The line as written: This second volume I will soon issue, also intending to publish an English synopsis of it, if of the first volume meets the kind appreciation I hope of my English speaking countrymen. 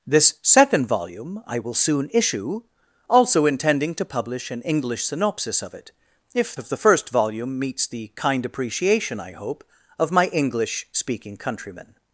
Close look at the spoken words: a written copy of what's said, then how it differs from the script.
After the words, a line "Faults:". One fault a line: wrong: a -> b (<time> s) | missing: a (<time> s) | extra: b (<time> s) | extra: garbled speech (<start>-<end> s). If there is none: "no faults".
This second volume I will soon issue, also intending to publish an English synopsis of it, if of the first volume meets the kind appreciation I hope of my English speaking countrymen.
Faults:
no faults